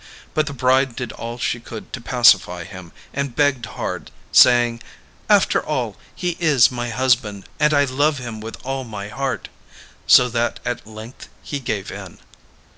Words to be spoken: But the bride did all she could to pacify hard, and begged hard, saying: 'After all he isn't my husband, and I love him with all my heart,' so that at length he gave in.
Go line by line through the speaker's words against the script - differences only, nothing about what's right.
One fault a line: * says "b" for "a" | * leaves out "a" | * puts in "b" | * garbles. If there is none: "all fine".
* says "him" for "hard"
* says "is" for "isn't"